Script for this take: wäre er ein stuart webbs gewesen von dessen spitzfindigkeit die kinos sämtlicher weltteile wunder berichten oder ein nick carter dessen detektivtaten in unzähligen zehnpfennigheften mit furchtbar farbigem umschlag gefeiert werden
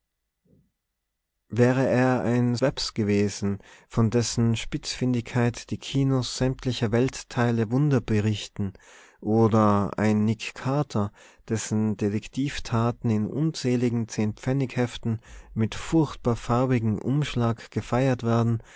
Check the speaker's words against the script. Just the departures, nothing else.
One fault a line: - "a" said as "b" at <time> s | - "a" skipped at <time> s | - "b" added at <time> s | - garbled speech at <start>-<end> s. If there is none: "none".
- "stuart" skipped at 2.6 s